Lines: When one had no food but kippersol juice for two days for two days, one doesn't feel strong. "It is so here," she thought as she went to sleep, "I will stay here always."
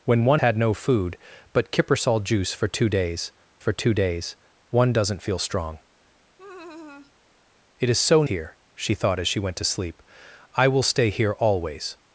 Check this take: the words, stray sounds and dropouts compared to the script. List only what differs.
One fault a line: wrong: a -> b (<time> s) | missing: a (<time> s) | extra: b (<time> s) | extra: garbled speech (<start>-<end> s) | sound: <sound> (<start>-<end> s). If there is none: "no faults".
sound: laugh (6.4-7.1 s)